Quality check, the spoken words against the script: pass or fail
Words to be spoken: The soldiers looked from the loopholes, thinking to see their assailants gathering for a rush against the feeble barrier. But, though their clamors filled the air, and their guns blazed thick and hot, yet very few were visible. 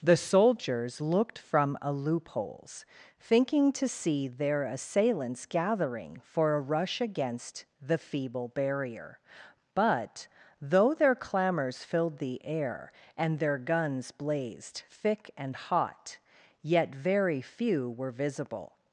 fail